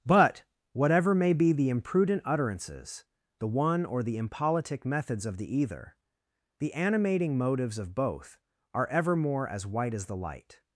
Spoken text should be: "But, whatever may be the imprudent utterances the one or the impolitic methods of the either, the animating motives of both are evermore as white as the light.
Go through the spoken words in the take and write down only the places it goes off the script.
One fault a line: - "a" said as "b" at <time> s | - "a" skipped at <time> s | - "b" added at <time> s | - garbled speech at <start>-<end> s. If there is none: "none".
none